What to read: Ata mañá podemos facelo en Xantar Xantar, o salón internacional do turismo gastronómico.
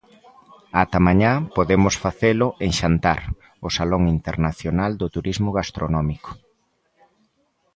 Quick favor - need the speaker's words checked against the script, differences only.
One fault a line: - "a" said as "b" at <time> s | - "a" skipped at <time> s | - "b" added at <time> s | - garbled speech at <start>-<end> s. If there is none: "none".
- "Xantar" skipped at 3.2 s